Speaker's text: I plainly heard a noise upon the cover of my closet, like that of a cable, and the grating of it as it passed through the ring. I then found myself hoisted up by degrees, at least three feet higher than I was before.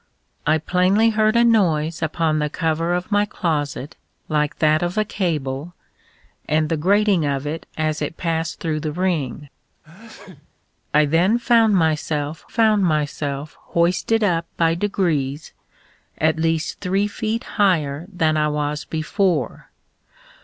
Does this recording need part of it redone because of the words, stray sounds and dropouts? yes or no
yes